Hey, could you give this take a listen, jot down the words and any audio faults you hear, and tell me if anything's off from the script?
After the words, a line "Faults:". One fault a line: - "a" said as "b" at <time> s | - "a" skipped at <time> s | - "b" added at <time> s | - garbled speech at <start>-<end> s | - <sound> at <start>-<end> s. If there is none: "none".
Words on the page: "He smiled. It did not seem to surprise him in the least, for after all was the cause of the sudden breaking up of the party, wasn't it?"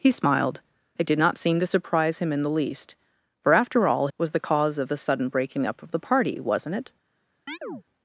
"He smiled. It did not seem to surprise him in the least, for after all was the cause of the sudden breaking up of the party, wasn't it?"
Faults:
- chirp at 7.5-7.8 s